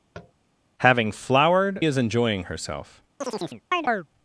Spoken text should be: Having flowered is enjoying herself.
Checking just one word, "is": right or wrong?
right